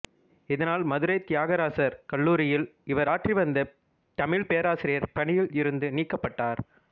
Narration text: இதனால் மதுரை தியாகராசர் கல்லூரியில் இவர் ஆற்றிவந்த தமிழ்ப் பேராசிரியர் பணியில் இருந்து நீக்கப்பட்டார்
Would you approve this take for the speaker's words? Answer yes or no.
yes